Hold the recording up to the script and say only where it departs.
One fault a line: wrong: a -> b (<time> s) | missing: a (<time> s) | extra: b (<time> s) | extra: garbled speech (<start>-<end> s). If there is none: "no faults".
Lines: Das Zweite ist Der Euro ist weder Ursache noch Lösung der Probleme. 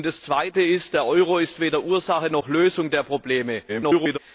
extra: garbled speech (3.7-4.2 s)